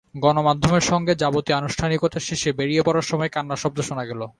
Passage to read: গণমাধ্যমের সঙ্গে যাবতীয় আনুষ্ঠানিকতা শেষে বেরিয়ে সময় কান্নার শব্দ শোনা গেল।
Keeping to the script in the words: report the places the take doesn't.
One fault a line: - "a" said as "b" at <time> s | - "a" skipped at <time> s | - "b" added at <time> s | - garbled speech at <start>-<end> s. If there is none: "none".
- "পড়ার" added at 2.8 s